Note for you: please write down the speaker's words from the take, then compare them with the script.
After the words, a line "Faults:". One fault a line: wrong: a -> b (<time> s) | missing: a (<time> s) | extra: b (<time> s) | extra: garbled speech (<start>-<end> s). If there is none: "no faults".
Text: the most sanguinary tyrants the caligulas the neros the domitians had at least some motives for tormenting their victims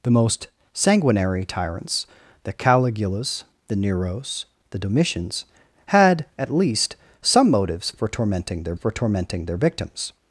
the most sanguinary tyrants the caligulas the neros the domitians had at least some motives for tormenting their for tormenting their victims
Faults:
extra: for tormenting their (8.7 s)